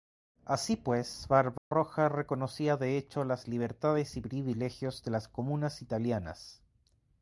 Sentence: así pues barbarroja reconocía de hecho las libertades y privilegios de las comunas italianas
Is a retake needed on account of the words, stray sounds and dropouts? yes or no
yes